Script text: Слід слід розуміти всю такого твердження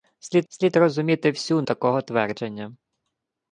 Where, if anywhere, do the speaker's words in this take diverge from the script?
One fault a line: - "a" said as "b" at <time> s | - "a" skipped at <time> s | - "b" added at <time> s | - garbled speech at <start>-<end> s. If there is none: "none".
none